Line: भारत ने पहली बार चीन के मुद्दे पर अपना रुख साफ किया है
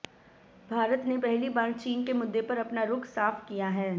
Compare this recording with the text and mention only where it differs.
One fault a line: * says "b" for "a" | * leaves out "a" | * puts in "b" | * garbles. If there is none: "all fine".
all fine